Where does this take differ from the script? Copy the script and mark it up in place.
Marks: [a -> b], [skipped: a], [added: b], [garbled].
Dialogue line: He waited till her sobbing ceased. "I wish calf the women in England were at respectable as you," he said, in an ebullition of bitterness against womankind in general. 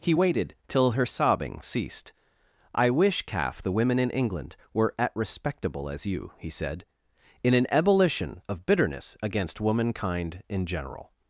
He waited till her sobbing ceased. "I wish calf the women in England were at respectable as you," he said, in an ebullition of bitterness against womankind in general.